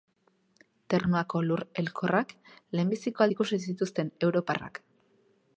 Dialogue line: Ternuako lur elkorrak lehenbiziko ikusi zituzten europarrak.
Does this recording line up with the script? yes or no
yes